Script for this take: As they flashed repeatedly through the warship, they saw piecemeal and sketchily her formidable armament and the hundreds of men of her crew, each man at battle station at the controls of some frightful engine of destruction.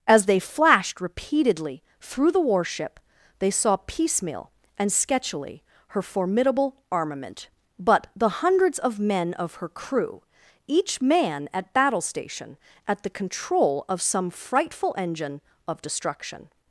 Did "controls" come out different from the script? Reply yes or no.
yes